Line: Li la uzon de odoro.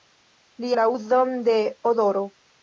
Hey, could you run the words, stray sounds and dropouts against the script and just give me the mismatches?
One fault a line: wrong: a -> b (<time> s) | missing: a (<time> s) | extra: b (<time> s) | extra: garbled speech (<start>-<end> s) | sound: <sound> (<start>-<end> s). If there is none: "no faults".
no faults